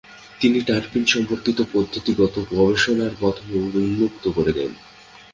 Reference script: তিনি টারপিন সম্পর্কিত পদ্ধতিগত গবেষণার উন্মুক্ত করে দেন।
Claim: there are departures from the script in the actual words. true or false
true